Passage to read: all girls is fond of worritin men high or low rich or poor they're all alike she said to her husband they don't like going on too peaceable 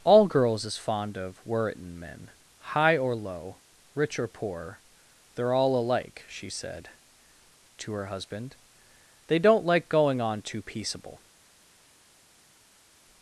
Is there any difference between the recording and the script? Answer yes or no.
no